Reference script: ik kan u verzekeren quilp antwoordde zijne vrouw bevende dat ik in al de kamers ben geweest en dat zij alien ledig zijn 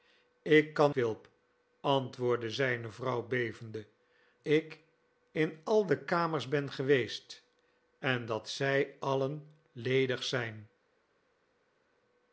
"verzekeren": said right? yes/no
no